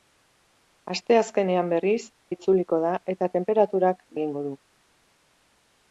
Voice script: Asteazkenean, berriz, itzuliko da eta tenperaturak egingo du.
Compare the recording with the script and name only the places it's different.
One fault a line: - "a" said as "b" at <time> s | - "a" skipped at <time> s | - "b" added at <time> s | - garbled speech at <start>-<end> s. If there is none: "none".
none